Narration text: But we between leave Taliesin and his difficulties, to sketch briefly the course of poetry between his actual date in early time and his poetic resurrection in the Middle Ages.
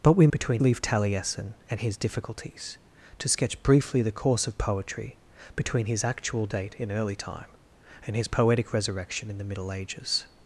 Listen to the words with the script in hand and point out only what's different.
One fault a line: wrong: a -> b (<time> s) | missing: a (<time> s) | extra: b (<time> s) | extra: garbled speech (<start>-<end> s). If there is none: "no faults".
no faults